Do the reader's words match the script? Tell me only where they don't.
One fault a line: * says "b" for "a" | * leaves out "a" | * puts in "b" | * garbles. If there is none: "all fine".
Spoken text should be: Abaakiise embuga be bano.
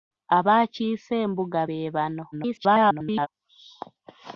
* garbles